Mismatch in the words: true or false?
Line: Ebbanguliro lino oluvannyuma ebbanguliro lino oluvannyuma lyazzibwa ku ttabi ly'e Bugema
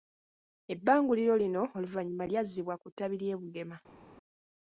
true